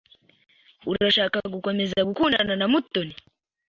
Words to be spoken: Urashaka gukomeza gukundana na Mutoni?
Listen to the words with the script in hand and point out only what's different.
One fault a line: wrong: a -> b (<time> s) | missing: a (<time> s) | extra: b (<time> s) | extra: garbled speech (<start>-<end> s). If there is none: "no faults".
no faults